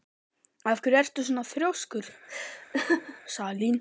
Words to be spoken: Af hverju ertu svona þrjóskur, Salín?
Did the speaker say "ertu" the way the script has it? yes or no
yes